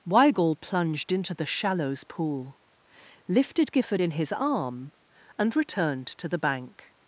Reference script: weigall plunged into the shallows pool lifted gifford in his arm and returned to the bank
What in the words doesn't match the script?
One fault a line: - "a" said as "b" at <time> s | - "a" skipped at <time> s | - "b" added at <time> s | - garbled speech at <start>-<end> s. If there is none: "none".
none